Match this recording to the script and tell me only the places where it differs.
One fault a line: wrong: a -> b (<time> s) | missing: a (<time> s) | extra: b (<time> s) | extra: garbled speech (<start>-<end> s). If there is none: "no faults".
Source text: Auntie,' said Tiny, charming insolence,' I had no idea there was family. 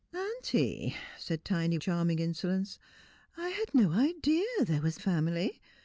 no faults